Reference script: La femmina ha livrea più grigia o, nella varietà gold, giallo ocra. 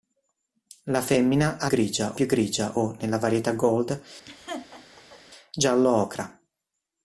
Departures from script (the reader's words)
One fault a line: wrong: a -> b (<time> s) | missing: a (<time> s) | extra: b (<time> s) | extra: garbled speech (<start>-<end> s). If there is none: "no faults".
wrong: livrea -> grigia (1.7 s)